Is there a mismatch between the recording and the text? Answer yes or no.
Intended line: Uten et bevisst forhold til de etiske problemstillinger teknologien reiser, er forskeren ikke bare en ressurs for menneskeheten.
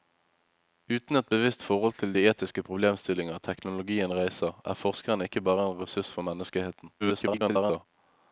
yes